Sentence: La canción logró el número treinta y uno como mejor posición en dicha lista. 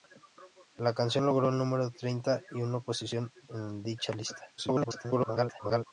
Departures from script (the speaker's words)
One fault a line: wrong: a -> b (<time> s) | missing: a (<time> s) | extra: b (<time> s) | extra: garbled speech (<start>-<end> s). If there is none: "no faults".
missing: como mejor (2.8 s)
extra: garbled speech (4.6-5.9 s)